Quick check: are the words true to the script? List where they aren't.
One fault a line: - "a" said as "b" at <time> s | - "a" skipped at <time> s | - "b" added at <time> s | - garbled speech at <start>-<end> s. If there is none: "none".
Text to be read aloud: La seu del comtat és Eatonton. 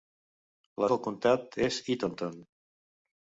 - "seu" skipped at 0.9 s